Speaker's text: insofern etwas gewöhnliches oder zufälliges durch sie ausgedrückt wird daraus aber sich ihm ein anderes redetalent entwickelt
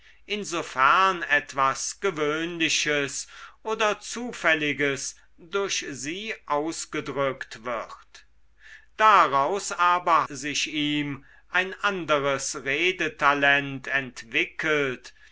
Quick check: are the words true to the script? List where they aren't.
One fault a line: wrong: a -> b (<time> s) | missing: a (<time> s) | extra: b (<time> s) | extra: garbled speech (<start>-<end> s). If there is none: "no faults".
no faults